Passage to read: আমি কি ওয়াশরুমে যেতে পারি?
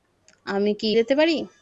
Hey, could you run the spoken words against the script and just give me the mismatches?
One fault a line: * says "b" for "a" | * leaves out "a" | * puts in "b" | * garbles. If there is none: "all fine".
* leaves out "ওয়াশরুমে"